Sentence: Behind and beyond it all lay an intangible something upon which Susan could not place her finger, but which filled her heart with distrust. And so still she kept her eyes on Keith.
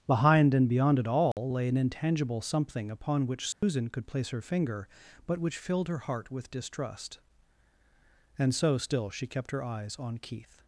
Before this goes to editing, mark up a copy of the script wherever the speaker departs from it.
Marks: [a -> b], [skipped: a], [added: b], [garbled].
Behind and beyond it all lay an intangible something upon which Susan could [skipped: not] place her finger, but which filled her heart with distrust. And so still she kept her eyes on Keith.